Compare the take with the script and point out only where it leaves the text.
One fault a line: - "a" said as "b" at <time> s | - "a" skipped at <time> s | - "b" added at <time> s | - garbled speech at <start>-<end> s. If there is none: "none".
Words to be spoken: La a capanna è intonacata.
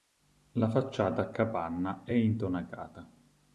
- "facciata" added at 0.7 s